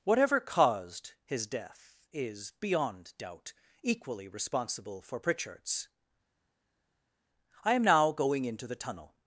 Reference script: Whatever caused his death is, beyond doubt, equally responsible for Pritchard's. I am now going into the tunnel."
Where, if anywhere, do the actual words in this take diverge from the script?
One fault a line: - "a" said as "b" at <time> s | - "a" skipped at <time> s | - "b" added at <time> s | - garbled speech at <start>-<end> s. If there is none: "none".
none